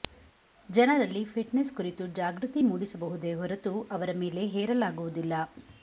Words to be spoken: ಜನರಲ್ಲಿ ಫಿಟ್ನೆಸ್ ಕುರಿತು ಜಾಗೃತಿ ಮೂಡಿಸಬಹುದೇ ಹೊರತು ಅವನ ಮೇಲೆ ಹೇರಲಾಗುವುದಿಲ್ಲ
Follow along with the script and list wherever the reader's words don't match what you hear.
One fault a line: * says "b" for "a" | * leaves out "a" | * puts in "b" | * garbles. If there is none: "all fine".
* says "ಅವರ" for "ಅವನ"